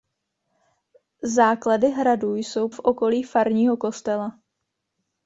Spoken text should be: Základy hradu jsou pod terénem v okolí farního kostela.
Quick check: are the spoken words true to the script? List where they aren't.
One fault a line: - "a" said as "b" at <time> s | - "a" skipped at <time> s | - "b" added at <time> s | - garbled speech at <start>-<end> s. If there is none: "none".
- "pod terénem" skipped at 2.7 s